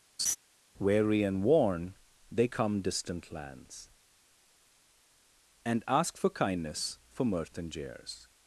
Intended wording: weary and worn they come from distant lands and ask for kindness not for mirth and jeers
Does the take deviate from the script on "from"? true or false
true